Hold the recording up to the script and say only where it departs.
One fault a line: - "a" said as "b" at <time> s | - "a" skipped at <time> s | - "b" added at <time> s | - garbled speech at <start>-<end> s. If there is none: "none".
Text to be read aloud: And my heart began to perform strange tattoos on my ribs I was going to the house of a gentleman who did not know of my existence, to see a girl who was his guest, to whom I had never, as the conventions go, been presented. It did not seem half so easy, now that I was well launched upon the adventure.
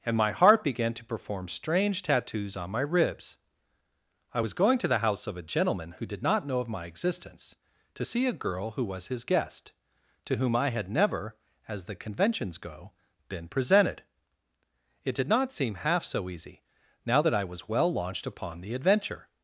none